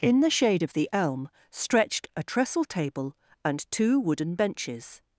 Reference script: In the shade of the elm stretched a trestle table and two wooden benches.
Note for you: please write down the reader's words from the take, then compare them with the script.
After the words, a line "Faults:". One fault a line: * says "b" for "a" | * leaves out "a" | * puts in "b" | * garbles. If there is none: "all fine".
In the shade of the elm stretched a trestle table and two wooden benches.
Faults:
all fine